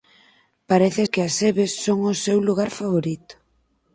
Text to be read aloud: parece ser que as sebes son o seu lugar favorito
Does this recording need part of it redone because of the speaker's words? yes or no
yes